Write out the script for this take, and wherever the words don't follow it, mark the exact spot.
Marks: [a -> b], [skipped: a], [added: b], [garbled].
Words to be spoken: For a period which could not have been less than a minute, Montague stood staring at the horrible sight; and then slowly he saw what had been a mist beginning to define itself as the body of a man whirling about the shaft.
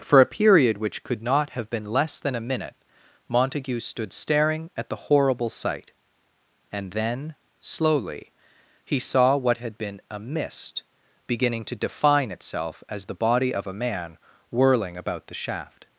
For a period which could not have been less than a minute, Montague stood staring at the horrible sight; and then slowly he saw what had been a mist beginning to define itself as the body of a man whirling about the shaft.